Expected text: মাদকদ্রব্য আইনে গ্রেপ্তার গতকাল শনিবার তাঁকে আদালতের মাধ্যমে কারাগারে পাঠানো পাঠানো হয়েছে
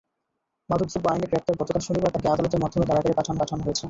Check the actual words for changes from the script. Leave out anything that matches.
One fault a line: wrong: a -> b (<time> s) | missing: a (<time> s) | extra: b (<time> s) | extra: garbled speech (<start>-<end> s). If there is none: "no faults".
no faults